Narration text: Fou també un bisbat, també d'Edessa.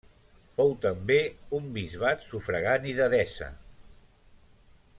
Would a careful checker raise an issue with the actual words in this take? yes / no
yes